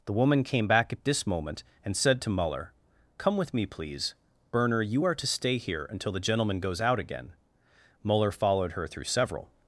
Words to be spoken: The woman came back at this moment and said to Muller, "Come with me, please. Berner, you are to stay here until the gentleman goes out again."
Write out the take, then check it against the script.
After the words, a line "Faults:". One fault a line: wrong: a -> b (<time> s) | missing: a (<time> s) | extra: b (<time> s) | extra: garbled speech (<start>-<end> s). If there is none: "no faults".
The woman came back at this moment and said to Muller, "Come with me, please. Berner, you are to stay here until the gentleman goes out again." Muller followed her through several
Faults:
extra: Muller followed her through several (8.0 s)